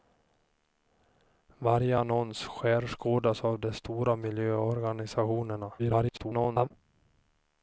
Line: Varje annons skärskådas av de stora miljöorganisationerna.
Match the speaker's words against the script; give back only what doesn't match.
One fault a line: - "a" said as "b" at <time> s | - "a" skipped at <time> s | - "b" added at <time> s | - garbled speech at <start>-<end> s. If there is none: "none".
- garbled speech at 5.8-6.7 s